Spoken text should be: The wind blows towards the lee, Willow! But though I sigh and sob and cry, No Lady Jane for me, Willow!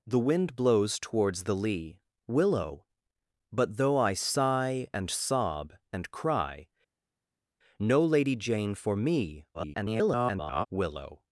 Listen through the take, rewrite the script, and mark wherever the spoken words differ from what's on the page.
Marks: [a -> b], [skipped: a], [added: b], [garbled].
The wind blows towards the lee, Willow! But though I sigh and sob and cry, No Lady Jane for me, [garbled] Willow!